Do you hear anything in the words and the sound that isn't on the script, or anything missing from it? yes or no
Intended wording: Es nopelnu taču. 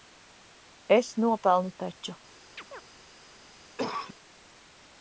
yes